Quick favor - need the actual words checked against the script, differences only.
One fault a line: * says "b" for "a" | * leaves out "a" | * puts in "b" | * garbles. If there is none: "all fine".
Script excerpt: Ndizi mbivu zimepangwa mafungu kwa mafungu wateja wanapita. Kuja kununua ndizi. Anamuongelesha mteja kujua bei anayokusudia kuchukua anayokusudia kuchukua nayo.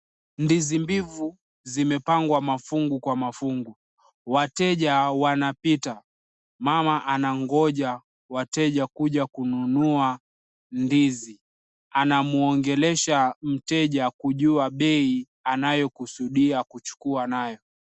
* puts in "Mama anangoja wateja"
* leaves out "anayokusudia kuchukua"